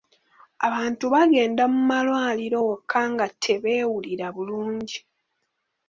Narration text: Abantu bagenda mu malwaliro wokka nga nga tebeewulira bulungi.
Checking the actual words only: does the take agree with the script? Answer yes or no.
no